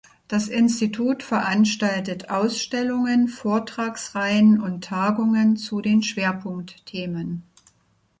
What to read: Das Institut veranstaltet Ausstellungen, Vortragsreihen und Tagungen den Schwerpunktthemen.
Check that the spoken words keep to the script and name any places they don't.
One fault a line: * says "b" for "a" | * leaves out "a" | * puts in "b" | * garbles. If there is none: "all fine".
* puts in "zu"